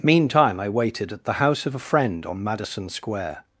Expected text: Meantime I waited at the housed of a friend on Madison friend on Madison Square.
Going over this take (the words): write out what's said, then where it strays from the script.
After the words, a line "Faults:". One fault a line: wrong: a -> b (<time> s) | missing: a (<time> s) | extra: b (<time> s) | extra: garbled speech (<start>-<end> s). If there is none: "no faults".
Meantime I waited at the house of a friend on Madison Square.
Faults:
wrong: housed -> house (1.3 s)
missing: friend on Madison (2.9 s)